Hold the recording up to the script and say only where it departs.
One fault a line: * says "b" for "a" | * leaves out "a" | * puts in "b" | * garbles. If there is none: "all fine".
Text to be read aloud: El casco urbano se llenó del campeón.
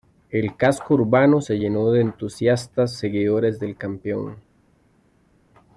* puts in "de entusiastas seguidores"